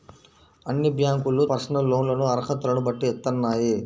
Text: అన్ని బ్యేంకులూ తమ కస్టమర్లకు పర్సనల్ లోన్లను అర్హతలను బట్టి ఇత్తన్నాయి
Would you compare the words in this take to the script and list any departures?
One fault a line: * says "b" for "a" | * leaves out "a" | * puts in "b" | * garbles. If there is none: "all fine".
* leaves out "తమ కస్టమర్లకు"